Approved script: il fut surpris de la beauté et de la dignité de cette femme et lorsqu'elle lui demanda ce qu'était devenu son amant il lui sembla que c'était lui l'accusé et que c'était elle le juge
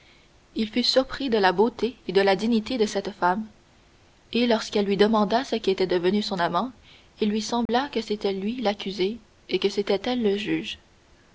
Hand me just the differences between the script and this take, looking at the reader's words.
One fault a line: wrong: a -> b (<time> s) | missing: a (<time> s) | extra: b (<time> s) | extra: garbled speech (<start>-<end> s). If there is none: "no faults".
no faults